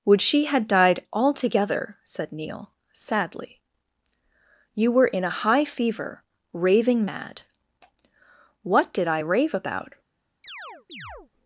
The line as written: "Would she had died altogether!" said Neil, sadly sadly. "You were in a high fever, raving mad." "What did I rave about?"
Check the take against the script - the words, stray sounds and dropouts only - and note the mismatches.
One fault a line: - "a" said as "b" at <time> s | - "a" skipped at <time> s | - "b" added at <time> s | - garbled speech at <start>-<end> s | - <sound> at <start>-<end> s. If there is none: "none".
- "sadly" skipped at 3.6 s
- chirp at 10.4-11.3 s